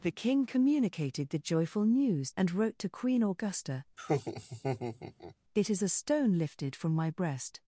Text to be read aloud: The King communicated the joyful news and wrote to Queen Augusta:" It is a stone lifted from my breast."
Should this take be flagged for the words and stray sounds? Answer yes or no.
yes